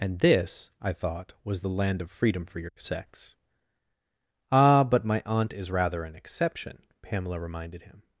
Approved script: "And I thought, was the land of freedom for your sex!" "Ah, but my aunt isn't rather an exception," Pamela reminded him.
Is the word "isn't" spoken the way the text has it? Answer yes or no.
no